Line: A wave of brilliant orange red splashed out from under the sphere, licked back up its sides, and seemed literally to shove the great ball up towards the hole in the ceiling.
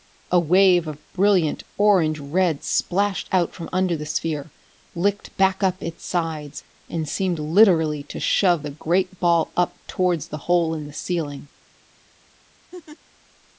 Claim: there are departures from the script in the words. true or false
false